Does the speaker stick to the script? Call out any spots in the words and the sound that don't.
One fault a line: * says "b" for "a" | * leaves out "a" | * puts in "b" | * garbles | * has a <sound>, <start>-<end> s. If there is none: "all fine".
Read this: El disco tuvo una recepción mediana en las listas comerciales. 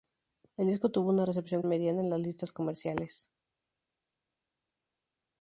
all fine